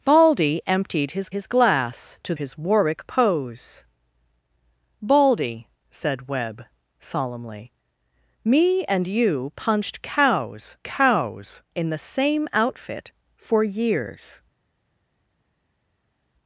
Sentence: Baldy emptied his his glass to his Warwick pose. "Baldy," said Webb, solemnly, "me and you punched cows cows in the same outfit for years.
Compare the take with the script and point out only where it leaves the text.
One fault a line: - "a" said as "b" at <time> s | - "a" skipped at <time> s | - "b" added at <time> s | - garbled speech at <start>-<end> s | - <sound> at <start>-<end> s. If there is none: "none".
none